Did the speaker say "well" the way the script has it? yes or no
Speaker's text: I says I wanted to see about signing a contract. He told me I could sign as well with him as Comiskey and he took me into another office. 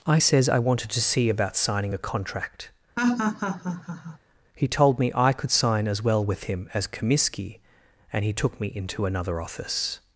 yes